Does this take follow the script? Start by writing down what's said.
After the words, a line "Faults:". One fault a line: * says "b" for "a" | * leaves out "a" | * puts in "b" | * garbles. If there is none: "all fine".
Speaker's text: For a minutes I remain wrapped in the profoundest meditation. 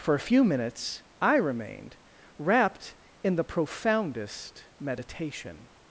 For a few minutes I remained wrapped in the profoundest meditation.
Faults:
* puts in "few"
* says "remained" for "remain"